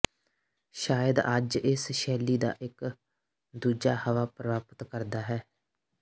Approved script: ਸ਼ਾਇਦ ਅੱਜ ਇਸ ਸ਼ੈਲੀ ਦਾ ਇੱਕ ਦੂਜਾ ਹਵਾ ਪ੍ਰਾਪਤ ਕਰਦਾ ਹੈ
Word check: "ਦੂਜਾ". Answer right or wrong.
right